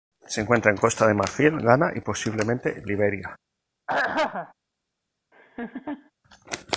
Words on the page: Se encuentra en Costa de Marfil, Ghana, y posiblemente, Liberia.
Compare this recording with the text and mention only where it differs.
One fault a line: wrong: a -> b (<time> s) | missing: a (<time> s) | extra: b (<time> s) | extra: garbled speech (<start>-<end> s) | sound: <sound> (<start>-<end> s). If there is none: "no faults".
sound: throat clearing (3.9-4.5 s)
sound: laugh (5.3-6.1 s)